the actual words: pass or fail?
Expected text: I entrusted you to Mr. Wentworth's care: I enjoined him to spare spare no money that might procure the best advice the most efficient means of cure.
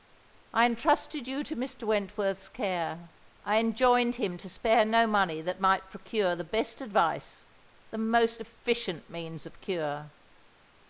fail